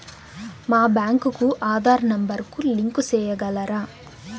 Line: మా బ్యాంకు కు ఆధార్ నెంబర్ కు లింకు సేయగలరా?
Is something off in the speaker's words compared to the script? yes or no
no